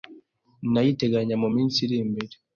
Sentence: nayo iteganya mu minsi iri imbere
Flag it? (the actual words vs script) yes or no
no